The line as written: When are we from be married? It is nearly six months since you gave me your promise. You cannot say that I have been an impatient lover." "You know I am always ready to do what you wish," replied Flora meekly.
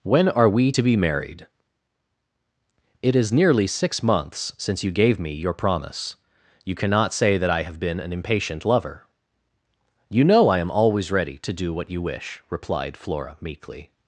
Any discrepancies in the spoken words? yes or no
yes